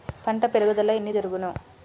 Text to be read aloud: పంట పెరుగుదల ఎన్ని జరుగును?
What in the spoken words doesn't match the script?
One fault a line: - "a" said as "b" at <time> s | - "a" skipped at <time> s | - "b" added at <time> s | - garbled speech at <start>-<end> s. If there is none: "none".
none